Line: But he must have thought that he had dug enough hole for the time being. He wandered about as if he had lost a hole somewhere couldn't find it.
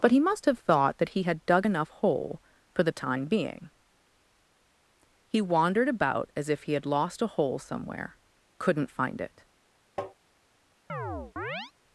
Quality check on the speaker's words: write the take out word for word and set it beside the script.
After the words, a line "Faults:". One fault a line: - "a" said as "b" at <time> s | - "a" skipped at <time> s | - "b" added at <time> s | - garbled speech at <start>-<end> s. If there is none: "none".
But he must have thought that he had dug enough hole for the time being. He wandered about as if he had lost a hole somewhere couldn't find it.
Faults:
none